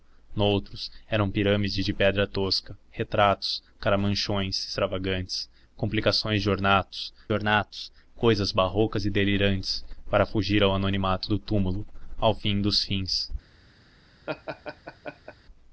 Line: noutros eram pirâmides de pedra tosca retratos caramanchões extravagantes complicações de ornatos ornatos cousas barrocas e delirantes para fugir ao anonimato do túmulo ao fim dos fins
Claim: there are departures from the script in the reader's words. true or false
false